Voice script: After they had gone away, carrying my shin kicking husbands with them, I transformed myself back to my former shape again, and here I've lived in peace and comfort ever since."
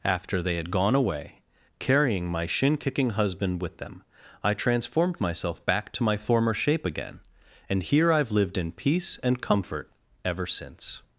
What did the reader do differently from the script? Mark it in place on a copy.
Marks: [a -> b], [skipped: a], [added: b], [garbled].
After they had gone away, carrying my shin kicking [husbands -> husband] with them, I transformed myself back to my former shape again, and here I've lived in peace and comfort ever since."